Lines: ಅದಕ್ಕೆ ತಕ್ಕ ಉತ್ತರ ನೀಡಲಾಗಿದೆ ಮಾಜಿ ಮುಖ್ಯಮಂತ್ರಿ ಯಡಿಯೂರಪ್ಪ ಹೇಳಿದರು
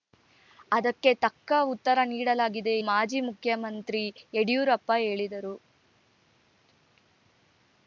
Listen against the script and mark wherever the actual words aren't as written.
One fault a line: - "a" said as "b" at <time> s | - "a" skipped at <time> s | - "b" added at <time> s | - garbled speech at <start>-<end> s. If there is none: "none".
none